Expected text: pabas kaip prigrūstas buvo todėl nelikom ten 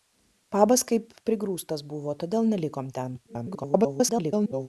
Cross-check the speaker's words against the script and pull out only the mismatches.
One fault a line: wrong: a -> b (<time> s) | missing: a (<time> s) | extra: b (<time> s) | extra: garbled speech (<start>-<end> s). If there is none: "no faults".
extra: garbled speech (3.3-4.7 s)